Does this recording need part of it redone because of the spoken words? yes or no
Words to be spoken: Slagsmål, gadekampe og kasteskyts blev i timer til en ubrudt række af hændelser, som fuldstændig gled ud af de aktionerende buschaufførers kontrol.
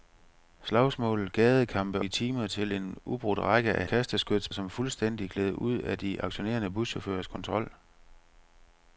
yes